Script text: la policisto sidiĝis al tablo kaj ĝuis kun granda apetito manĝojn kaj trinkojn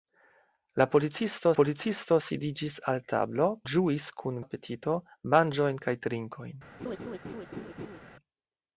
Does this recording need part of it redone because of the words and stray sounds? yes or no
yes